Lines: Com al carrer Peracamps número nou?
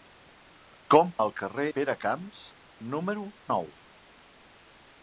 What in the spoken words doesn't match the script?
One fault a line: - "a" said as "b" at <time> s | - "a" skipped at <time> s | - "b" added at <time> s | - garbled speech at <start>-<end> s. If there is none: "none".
none